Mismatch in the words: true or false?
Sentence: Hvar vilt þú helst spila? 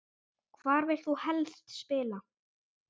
false